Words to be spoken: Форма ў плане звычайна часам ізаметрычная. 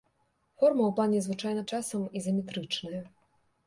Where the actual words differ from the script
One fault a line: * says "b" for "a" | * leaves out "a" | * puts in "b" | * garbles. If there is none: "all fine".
all fine